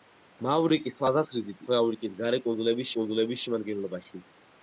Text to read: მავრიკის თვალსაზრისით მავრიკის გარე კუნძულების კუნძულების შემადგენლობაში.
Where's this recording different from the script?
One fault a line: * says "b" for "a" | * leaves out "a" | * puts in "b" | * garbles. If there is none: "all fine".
all fine